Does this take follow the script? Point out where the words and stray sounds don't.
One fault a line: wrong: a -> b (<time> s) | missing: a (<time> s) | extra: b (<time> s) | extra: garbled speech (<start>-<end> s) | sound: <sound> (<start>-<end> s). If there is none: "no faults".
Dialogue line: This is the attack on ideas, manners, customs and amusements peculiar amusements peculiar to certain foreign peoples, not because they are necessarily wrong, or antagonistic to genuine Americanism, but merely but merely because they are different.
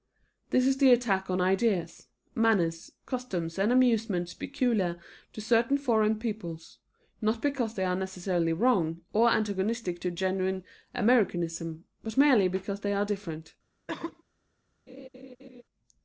missing: amusements peculiar (5.0 s)
missing: but merely (12.5 s)
sound: cough (13.9-14.2 s)
sound: laugh (14.9-15.6 s)